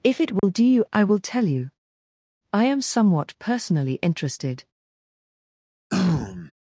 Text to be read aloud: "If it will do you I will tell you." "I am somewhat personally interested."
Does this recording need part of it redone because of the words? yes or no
no